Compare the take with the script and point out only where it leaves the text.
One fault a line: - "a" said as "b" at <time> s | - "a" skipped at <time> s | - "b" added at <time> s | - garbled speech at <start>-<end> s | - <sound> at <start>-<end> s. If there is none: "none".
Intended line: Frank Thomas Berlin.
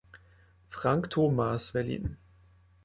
none